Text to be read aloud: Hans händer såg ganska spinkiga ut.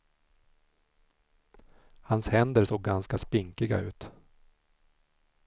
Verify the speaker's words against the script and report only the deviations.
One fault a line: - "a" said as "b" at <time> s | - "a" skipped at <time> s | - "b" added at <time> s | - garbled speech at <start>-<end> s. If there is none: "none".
none